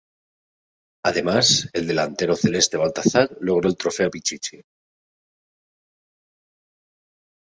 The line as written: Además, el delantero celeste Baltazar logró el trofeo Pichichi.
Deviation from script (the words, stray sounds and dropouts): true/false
false